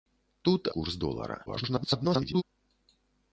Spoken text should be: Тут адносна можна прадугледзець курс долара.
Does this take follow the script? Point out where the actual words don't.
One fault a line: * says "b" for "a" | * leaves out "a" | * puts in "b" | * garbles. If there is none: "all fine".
* leaves out "адносна можна прадугледзець"
* garbles